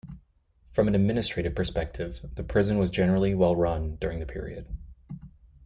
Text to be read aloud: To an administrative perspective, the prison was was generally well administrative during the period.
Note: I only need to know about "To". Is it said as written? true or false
false